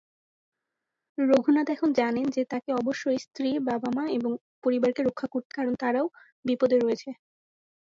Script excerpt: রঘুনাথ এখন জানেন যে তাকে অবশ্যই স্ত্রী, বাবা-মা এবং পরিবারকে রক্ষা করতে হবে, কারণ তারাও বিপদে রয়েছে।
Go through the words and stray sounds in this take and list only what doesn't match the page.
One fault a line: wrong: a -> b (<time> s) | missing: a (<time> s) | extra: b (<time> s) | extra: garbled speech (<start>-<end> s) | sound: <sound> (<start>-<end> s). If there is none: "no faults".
missing: হবে (5.5 s)